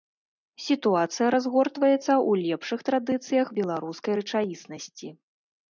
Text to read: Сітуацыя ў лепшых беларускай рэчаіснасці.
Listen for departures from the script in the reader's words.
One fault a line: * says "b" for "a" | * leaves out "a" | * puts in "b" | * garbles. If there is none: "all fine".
* puts in "разгортваецца"
* puts in "традыцыях"